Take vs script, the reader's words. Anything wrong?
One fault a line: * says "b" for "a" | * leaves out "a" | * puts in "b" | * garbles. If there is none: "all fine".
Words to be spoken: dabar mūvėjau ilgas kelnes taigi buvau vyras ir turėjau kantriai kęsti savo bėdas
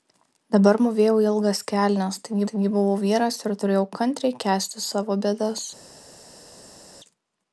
* puts in "taigi"